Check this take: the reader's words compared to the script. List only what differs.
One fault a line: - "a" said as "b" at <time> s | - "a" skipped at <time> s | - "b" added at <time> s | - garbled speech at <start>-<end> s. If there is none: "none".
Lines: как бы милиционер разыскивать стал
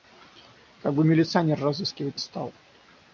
none